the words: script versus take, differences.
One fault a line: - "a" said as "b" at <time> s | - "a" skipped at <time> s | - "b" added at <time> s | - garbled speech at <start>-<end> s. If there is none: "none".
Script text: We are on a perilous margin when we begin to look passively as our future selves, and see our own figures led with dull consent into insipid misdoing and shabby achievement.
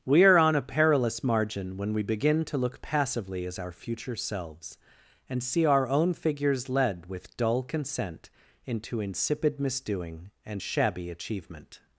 none